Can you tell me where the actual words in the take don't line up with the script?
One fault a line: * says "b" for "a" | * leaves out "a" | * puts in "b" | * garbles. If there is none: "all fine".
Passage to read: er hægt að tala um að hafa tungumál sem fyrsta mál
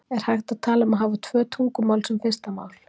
* puts in "tvö"